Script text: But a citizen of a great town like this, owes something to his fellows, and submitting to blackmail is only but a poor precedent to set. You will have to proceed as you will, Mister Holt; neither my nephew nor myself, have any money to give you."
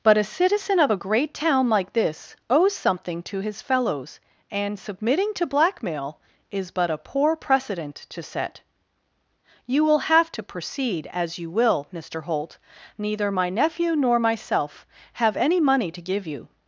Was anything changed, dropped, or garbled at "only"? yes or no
yes